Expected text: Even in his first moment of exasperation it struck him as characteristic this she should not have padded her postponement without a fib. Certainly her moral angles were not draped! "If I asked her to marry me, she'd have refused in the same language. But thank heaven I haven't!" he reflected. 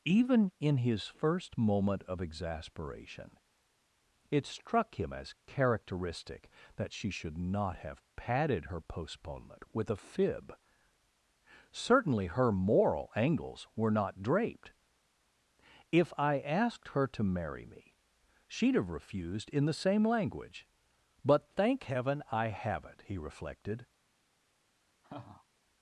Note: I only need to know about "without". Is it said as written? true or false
false